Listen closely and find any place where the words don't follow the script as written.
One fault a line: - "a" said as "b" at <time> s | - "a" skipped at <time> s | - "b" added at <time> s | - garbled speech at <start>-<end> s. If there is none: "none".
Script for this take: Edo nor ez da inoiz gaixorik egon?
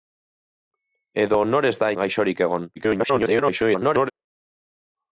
- "inoiz" skipped at 1.9 s
- garbled speech at 2.8-4.1 s